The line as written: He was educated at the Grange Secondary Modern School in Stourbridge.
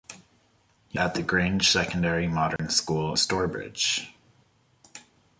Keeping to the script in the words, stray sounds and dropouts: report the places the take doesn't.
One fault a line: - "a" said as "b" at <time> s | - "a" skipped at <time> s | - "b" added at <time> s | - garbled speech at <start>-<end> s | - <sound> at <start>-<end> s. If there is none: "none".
- "was educated" skipped at 1.0 s
- dropout at 2.6-2.6 s
- "in" skipped at 3.1 s